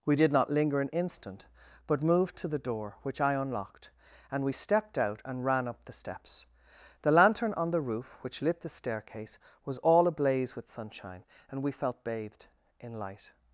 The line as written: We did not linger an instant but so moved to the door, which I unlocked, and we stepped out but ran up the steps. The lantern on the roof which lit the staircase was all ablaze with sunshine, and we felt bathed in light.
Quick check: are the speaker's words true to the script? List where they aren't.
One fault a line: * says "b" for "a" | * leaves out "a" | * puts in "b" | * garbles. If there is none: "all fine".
* leaves out "so"
* says "and" for "but"